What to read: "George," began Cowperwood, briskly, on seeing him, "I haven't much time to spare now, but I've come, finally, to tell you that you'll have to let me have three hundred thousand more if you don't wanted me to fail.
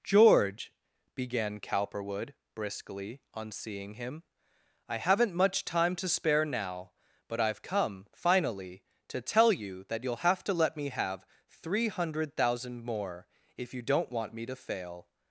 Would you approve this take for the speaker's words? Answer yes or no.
no